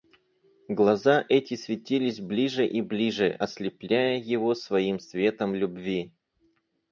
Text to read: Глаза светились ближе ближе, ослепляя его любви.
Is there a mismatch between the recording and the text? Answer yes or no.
yes